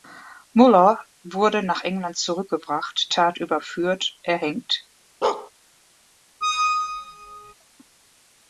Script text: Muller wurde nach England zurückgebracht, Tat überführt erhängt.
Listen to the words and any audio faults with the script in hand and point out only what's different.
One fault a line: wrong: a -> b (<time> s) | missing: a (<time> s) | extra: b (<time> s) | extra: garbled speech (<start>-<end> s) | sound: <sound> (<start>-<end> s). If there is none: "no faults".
sound: bark (5.2-5.5 s)
sound: squeak (6.4-7.5 s)